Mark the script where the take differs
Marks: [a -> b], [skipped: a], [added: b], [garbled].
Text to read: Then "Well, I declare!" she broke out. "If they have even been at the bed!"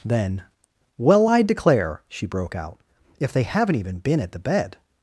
Then "Well, I declare!" she broke out. "If they [have -> haven't] even been at the bed!"